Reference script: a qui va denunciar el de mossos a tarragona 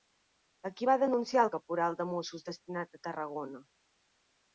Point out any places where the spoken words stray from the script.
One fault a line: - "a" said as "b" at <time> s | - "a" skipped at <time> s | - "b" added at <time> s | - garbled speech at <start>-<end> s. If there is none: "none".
- "caporal" added at 1.5 s
- "destinat" added at 2.5 s